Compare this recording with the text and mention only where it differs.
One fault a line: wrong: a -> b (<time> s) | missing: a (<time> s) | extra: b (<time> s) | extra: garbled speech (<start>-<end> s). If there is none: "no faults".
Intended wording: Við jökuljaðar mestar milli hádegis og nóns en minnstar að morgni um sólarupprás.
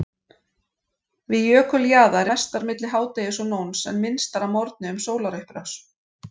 no faults